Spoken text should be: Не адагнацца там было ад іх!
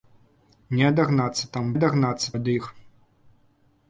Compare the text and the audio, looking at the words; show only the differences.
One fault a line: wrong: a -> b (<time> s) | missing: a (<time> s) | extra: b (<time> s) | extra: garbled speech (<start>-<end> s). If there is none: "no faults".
wrong: было -> адагнацца (1.8 s)